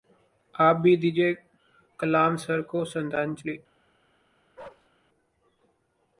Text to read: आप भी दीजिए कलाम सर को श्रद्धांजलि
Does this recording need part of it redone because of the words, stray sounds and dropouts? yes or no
yes